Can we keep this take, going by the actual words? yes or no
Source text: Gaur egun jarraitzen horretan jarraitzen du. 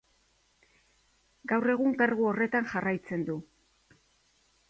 no